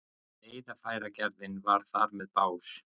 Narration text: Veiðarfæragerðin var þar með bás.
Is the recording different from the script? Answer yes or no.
no